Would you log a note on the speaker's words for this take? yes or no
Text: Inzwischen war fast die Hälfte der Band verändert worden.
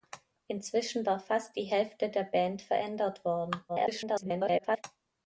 yes